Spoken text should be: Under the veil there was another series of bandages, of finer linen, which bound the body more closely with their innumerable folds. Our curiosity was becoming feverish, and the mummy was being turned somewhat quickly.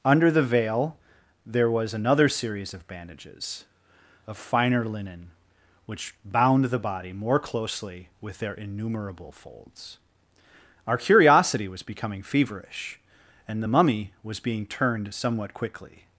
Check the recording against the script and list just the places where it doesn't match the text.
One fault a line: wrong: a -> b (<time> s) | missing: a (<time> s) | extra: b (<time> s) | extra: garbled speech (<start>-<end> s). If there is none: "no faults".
no faults